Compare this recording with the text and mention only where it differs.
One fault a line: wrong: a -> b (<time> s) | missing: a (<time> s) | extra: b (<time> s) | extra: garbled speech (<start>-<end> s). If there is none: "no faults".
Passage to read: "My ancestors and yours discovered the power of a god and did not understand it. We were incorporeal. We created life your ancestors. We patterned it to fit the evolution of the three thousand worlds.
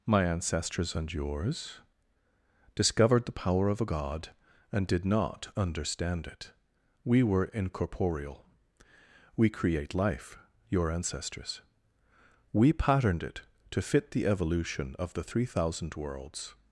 wrong: created -> create (9.5 s)